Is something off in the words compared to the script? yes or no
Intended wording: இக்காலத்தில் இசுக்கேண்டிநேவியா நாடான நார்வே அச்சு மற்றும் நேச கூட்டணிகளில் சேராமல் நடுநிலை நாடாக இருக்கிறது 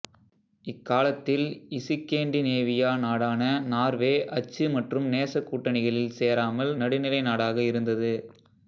yes